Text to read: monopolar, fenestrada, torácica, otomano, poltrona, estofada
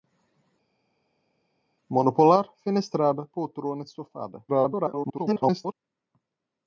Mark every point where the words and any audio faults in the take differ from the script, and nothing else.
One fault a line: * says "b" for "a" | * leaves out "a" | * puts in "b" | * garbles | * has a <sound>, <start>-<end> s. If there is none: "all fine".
* leaves out "torácica otomano"
* garbles